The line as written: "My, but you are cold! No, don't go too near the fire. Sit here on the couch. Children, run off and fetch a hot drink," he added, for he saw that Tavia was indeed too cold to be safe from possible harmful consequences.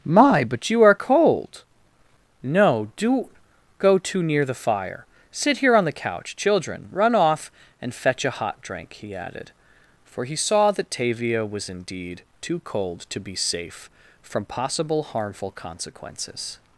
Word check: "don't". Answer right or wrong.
wrong